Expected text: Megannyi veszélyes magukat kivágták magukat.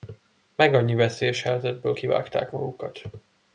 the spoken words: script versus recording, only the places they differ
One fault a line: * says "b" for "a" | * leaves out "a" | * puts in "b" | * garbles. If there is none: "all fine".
* says "helyzetből" for "magukat"